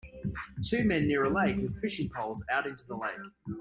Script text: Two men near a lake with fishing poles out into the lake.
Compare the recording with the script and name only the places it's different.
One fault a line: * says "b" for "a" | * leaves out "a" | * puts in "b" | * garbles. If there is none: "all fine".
all fine